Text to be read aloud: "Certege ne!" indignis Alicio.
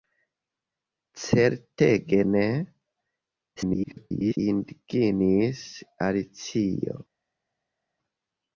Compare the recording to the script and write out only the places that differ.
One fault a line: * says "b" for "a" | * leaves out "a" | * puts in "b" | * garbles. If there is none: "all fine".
* garbles